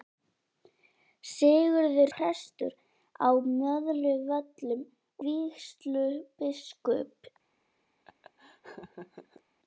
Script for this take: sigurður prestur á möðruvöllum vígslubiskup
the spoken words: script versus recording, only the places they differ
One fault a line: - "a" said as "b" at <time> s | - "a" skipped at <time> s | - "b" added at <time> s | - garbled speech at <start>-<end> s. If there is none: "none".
none